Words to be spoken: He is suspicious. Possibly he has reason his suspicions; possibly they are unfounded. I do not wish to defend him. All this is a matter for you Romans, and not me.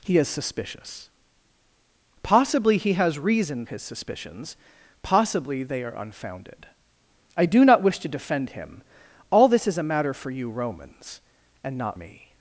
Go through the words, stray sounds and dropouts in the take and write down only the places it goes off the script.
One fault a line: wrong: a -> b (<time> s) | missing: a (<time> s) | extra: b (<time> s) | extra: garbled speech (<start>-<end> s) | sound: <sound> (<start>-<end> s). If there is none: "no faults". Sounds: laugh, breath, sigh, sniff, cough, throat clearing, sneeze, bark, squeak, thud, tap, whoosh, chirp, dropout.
no faults